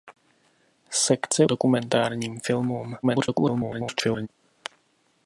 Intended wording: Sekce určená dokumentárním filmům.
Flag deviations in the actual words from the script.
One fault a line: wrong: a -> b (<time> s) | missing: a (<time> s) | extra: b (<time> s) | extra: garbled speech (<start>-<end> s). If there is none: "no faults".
missing: určená (1.4 s)
extra: garbled speech (3.0-4.3 s)